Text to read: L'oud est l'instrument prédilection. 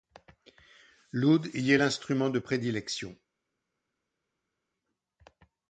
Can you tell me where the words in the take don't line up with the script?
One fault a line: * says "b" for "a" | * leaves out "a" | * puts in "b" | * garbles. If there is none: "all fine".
* puts in "y"
* puts in "de"